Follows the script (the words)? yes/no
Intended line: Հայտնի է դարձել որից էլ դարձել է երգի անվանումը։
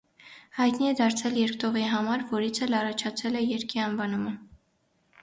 no